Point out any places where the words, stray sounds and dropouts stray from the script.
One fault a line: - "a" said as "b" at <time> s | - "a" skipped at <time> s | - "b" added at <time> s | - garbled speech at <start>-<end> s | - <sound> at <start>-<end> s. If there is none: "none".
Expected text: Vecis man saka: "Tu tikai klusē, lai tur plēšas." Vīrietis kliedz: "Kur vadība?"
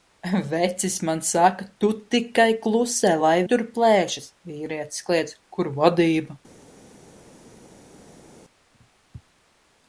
none